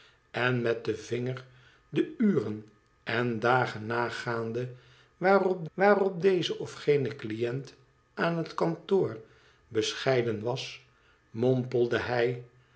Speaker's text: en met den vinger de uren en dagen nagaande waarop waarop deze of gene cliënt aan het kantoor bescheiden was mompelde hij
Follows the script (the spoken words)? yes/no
yes